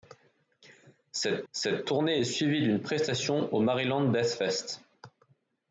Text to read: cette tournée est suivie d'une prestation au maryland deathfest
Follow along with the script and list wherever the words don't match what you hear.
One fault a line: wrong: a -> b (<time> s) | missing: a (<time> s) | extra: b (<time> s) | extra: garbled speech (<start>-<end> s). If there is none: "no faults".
extra: cette (1.5 s)